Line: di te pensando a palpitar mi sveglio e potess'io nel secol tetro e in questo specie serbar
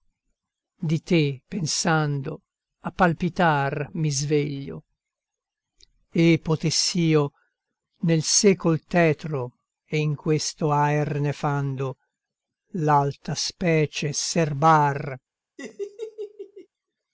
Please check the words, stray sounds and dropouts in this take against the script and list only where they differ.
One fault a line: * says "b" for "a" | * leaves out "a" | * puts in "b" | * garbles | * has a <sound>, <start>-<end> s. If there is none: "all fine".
* puts in "aer nefando l'alta"
* has a laugh, 15.6-16.7 s